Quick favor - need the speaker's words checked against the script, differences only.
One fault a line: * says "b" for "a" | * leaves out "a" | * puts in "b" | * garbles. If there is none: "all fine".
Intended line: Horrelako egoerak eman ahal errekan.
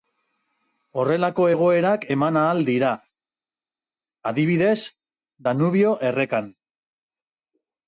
* puts in "dira adibidez Danubio"